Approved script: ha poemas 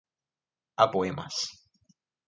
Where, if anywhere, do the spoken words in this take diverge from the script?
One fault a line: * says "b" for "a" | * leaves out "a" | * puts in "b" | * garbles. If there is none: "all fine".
all fine